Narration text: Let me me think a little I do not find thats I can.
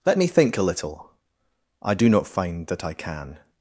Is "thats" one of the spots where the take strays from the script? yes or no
yes